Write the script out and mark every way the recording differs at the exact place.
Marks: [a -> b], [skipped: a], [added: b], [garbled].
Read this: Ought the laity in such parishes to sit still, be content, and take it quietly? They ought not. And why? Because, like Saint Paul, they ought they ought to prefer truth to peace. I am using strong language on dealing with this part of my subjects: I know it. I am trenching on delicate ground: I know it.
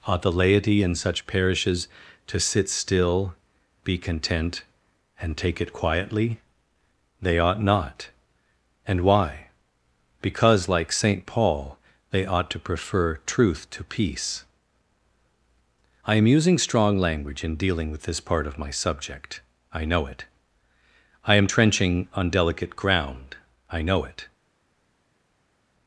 Ought the laity in such parishes to sit still, be content, and take it quietly? They ought not. And why? Because, like Saint Paul, they ought [skipped: they ought] to prefer truth to peace. I am using strong language [on -> in] dealing with this part of my [subjects: -> subject] I know it. I am trenching on delicate ground: I know it.